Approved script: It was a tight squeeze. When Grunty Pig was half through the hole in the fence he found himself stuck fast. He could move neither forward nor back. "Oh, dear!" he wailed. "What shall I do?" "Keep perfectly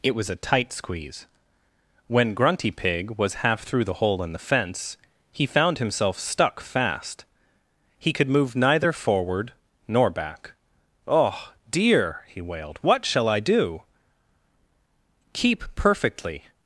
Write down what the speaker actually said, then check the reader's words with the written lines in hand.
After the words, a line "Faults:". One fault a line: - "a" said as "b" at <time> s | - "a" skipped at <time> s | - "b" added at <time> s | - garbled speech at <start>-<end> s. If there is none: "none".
It was a tight squeeze. When Grunty Pig was half through the hole in the fence he found himself stuck fast. He could move neither forward nor back. "Oh, dear!" he wailed. "What shall I do?" "Keep perfectly
Faults:
none